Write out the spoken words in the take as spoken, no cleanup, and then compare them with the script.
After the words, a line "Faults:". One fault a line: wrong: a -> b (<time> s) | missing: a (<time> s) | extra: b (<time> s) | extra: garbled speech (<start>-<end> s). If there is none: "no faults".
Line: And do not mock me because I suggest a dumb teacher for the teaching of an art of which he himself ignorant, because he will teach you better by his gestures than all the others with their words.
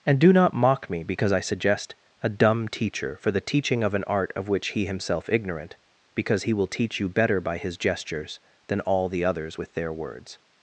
And do not mock me because I suggest a dumb teacher for the teaching of an art of which he himself ignorant, because he will teach you better by his gestures than all the others with their words.
Faults:
no faults